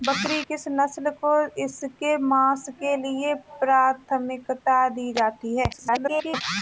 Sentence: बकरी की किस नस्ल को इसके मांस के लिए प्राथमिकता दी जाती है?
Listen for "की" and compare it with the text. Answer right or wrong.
wrong